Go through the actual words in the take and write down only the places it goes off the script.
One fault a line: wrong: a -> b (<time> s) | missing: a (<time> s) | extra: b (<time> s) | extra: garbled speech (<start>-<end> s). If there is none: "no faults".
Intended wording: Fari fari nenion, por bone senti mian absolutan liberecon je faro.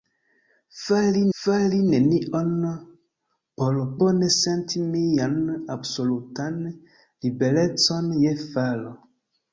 no faults